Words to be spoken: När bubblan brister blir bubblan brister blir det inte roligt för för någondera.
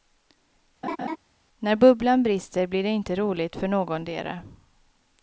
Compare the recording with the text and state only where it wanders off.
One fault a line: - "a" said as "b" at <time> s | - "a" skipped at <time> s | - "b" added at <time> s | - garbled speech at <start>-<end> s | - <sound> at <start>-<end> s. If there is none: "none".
- laugh at 0.8-1.2 s
- "bubblan brister blir" skipped at 2.8 s
- "för" skipped at 3.7 s